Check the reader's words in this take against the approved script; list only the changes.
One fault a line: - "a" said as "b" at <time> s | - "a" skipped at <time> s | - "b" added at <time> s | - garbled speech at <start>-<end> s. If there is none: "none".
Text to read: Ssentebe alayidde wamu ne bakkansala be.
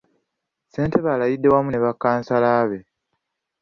none